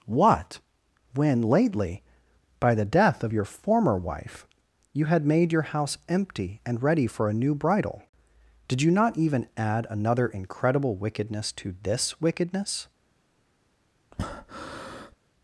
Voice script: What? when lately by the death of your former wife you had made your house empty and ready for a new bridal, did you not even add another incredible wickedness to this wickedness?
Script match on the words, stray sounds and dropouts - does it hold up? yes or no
no